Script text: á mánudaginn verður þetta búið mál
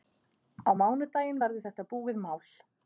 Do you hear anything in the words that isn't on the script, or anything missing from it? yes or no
no